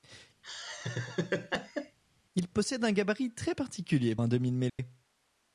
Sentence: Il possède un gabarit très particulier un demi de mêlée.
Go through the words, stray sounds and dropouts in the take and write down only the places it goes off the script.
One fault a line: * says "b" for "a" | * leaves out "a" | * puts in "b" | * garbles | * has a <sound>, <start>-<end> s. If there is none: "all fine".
* has a laugh, 0.4-2.0 s
* has a dropout, 4.7-4.8 s